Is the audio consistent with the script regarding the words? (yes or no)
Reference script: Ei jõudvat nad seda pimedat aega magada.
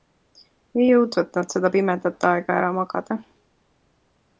no